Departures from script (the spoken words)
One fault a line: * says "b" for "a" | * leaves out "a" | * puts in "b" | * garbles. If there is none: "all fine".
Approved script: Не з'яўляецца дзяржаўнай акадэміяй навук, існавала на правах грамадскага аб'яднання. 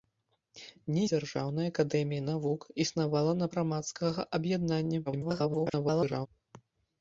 * leaves out "з'яўляецца"
* leaves out "правах"
* garbles